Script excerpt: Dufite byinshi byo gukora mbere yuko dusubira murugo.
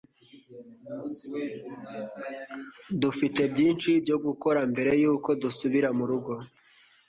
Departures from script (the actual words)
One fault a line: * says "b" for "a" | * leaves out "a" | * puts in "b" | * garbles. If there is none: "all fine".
all fine